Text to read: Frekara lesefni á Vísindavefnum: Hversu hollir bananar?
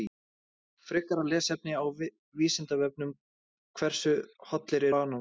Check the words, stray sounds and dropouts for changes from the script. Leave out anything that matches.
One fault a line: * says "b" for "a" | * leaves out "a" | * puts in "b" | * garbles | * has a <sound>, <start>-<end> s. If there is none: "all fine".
all fine